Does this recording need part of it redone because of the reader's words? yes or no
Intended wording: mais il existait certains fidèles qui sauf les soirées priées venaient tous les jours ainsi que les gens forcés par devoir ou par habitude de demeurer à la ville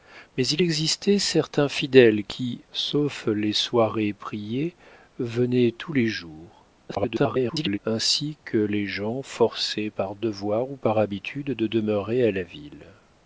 yes